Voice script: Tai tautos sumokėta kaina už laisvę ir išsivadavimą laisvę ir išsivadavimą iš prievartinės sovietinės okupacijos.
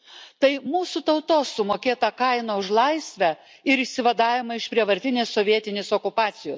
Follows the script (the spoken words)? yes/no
no